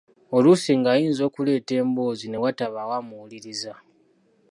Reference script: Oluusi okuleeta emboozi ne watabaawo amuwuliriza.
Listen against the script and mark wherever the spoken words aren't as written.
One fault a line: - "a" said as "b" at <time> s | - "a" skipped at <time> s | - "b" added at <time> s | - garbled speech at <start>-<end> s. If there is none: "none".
- "ng'ayinza" added at 0.8 s